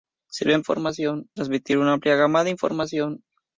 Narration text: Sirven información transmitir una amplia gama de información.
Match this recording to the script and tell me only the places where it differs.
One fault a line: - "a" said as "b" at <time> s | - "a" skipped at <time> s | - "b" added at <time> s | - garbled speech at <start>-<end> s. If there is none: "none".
none